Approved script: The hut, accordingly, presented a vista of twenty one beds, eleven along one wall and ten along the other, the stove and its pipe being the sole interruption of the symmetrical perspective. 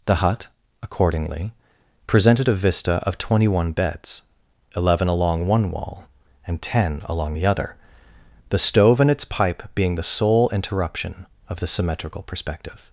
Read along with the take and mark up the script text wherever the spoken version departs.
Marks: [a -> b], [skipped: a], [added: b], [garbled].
The hut, accordingly, presented a vista of twenty one beds, eleven along one wall and ten along the other, the stove and its pipe being the sole interruption of the symmetrical perspective.